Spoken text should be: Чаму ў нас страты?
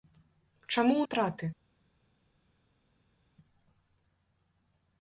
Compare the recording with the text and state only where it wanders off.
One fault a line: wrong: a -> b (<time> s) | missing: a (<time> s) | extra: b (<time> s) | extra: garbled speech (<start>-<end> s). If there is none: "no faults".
missing: нас (1.1 s)